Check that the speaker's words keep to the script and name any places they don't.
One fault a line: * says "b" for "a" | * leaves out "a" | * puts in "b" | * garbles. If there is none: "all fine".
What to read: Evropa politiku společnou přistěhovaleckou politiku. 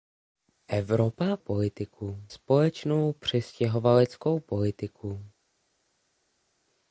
all fine